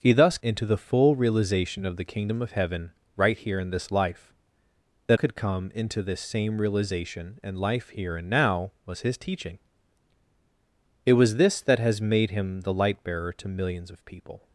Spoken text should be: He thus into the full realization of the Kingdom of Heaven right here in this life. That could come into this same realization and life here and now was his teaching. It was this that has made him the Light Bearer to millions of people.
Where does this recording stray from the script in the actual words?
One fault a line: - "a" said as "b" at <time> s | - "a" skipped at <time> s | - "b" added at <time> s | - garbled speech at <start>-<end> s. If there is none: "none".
none